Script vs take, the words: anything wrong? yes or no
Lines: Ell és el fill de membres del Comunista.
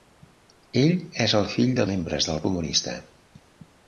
no